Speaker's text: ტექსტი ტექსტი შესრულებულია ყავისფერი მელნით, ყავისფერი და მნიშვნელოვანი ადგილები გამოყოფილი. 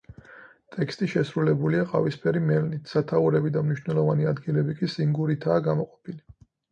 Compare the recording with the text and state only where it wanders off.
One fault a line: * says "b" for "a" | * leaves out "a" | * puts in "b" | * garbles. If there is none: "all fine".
* leaves out "ტექსტი"
* says "სათაურები" for "ყავისფერი"
* puts in "კი სინგურითაა"